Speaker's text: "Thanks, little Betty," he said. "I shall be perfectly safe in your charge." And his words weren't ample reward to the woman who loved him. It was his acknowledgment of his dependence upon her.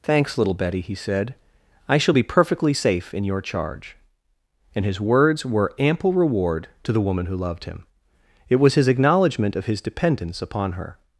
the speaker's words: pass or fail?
fail